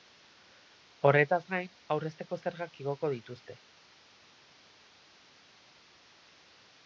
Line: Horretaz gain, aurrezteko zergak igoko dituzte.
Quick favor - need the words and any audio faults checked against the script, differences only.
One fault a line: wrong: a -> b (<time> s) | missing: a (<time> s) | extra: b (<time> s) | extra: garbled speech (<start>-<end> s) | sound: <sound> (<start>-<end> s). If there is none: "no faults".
no faults